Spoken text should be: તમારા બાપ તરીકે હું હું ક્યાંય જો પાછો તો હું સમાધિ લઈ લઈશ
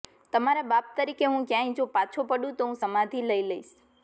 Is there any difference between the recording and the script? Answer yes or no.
yes